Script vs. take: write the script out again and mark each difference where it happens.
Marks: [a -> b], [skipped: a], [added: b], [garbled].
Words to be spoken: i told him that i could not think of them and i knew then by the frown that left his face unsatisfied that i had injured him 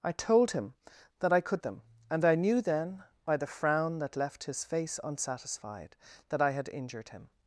i told him that i could [skipped: not think of] them and i knew then by the frown that left his face unsatisfied that i had injured him